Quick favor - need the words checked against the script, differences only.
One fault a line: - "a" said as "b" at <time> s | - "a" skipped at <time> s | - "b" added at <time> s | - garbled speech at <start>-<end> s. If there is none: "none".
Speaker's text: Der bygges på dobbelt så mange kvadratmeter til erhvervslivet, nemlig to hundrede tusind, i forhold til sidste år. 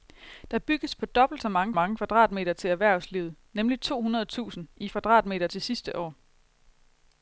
- "mange" added at 1.7 s
- "forhold" said as "kvadratmeter" at 4.9 s